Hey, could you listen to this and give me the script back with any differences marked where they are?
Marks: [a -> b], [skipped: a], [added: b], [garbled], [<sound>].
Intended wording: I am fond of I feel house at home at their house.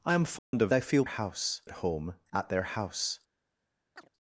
I am fond [dropout] of I feel house at home at their house. [chirp]